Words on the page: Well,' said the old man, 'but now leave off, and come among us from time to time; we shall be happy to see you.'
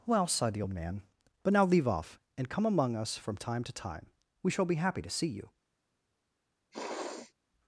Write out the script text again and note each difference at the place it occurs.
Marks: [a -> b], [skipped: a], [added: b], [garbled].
Well,' [said -> sighed] the old man, 'but now leave off, and come among us from time to time; we shall be happy to see you.'